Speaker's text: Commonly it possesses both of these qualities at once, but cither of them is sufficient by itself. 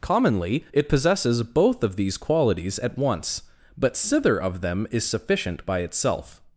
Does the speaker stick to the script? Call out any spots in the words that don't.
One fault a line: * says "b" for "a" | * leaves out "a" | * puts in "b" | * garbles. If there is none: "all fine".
all fine